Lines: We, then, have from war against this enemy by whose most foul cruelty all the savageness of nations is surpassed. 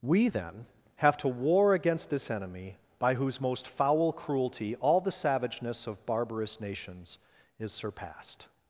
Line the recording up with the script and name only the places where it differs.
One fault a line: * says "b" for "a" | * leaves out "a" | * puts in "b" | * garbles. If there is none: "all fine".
* says "to" for "from"
* puts in "barbarous"